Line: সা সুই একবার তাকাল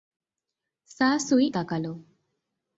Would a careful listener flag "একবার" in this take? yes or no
yes